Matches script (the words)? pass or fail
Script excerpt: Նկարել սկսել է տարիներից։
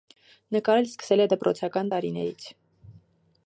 fail